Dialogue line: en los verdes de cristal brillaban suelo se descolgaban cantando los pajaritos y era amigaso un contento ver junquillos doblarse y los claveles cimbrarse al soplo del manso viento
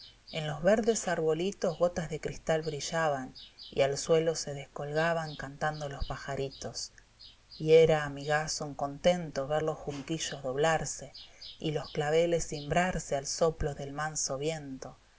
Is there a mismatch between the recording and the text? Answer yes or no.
yes